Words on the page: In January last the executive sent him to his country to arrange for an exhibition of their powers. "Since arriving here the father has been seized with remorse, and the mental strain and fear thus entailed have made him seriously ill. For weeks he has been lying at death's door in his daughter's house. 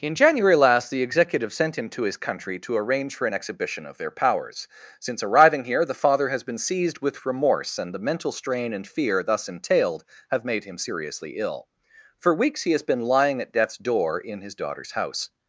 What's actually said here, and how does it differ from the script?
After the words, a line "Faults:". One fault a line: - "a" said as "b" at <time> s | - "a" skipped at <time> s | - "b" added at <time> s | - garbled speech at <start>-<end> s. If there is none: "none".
In January last the executive sent him to his country to arrange for an exhibition of their powers. "Since arriving here the father has been seized with remorse, and the mental strain and fear thus entailed have made him seriously ill. For weeks he has been lying at death's door in his daughter's house.
Faults:
none